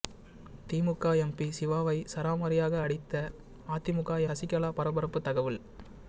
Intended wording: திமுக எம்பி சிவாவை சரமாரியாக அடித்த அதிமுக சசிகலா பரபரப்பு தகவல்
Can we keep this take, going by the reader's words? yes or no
yes